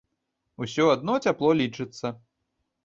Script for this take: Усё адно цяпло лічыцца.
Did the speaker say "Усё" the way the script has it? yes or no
yes